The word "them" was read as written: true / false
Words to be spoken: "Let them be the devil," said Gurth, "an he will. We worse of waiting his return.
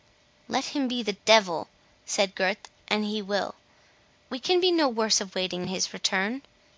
false